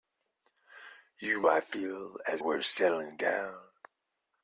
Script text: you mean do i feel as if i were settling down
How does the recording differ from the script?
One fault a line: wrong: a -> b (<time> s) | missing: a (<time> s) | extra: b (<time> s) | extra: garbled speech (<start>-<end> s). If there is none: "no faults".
missing: mean do (1.4 s)
missing: if i (2.4 s)